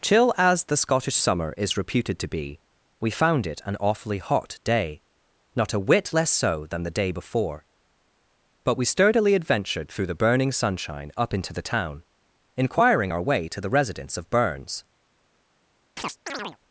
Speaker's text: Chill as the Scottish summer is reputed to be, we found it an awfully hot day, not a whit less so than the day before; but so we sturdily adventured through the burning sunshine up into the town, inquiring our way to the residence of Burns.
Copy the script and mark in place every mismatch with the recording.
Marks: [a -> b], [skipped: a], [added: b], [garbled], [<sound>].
Chill as the Scottish summer is reputed to be, we found it an awfully hot day, not a whit less so than the day before; but [skipped: so] we sturdily adventured through the burning sunshine up into the town, inquiring our way to the residence of Burns. [chirp]